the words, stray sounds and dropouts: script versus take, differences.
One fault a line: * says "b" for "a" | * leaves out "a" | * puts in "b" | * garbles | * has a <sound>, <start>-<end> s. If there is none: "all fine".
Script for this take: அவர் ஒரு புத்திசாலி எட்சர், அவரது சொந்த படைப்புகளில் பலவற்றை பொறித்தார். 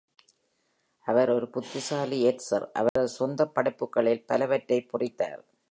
* has a dropout, 2.9-3.0 s